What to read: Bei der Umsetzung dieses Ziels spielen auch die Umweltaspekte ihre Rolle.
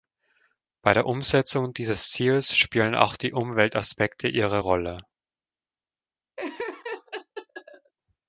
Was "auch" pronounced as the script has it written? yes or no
yes